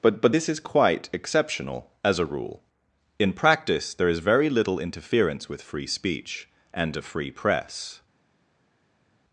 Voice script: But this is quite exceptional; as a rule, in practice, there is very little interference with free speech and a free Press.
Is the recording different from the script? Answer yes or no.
yes